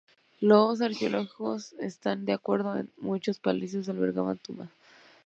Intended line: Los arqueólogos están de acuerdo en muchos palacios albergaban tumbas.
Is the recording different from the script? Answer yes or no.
no